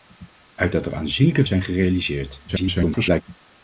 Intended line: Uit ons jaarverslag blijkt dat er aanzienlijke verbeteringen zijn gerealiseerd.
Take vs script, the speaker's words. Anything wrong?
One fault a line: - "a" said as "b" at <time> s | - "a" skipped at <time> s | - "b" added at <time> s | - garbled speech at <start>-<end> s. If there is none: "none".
- "ons jaarverslag blijkt" skipped at 0.8 s
- "verbeteringen" skipped at 1.4 s
- garbled speech at 2.5-3.2 s